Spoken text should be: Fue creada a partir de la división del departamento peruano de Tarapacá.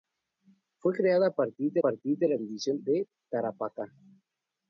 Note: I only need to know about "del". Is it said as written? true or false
false